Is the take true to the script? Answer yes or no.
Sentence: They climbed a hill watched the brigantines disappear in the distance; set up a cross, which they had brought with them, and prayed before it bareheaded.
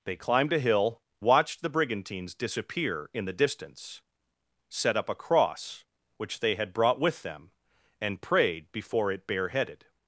yes